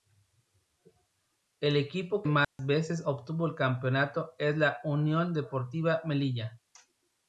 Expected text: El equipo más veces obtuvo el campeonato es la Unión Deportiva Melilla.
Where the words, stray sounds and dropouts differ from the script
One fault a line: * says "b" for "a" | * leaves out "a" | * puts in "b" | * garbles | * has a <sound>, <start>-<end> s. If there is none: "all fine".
* has a dropout, 2.4-2.6 s